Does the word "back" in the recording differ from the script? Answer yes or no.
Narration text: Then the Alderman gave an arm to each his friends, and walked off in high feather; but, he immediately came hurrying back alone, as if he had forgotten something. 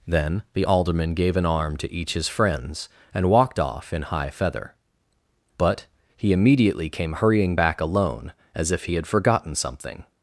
no